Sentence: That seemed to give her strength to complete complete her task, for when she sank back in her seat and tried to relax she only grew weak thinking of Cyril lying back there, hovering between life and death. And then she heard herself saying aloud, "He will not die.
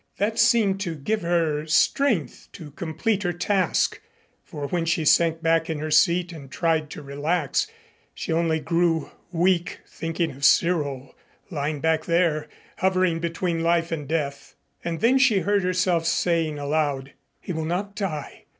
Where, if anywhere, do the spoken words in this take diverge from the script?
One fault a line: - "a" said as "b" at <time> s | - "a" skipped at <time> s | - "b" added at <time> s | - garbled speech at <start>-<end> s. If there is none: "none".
- "complete" skipped at 3.2 s